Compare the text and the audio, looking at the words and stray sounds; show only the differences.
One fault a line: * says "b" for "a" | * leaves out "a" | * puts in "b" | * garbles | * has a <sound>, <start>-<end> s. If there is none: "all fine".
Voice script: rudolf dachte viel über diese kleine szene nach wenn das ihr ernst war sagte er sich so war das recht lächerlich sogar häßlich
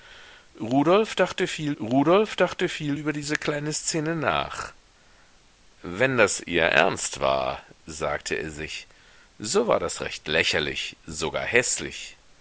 * puts in "rudolf dachte viel"